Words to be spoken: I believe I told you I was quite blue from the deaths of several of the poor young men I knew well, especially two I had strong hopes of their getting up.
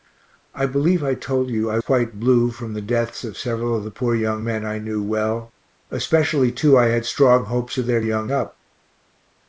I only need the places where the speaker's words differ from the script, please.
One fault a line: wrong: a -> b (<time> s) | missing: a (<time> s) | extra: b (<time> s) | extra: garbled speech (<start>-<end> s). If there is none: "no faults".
missing: was (1.8 s)
wrong: getting -> young (8.0 s)